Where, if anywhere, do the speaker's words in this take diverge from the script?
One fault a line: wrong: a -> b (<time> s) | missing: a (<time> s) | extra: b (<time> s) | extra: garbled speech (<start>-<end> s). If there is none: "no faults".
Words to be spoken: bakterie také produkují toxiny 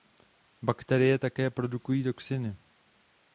no faults